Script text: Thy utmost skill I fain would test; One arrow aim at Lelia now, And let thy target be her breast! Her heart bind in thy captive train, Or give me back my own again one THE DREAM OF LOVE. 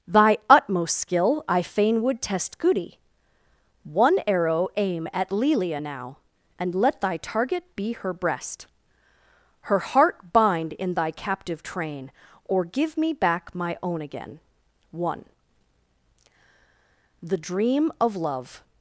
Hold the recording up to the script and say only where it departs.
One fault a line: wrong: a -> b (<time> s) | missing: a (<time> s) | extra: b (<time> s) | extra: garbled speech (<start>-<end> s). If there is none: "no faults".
extra: goody (2.6 s)